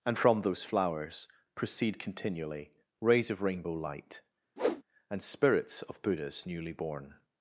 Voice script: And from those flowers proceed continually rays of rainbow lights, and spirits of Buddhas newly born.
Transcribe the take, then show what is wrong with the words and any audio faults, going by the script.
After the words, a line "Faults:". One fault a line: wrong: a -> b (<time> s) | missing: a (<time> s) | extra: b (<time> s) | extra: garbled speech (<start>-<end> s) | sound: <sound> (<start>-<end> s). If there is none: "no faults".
And from those flowers proceed continually rays of rainbow light, and spirits of Buddhas newly born.
Faults:
wrong: lights -> light (3.7 s)
sound: whoosh (4.6-4.8 s)